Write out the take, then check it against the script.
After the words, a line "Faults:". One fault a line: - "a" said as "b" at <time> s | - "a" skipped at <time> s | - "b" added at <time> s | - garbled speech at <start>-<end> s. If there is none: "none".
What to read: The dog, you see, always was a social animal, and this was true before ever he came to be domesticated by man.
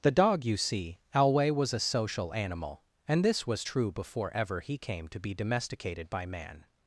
The dog, you see, alway was a social animal, and this was true before ever he came to be domesticated by man.
Faults:
- "always" said as "alway" at 1.1 s